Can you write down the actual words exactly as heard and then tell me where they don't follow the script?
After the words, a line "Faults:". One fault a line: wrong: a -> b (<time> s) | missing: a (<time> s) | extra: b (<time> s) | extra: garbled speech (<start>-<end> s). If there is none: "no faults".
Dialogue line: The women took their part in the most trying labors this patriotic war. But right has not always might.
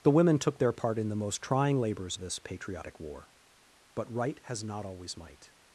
The women took their part in the most trying labors this patriotic war. But right has not always might.
Faults:
no faults